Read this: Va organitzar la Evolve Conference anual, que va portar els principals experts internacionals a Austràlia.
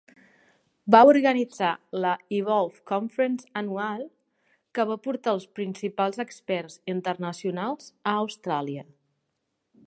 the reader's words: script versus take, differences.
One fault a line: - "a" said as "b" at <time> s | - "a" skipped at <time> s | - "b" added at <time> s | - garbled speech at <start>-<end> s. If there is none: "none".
none